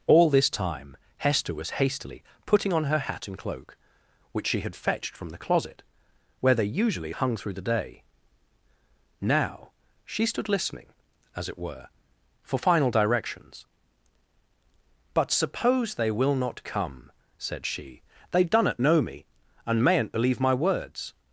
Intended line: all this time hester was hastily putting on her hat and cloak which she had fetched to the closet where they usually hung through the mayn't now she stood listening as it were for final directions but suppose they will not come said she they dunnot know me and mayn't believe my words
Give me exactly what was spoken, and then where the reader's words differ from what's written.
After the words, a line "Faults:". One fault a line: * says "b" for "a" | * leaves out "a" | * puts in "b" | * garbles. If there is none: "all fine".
all this time hester was hastily putting on her hat and cloak which she had fetched from the closet where they usually hung through the day now she stood listening as it were for final directions but suppose they will not come said she they dunnot know me and mayn't believe my words
Faults:
* says "from" for "to"
* says "day" for "mayn't"